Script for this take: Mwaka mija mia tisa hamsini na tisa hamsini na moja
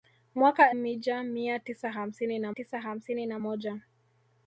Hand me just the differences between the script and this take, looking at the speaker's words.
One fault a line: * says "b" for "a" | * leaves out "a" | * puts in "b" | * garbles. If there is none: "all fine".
all fine